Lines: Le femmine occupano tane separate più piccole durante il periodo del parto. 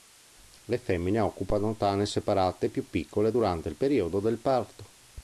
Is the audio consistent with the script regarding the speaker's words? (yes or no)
yes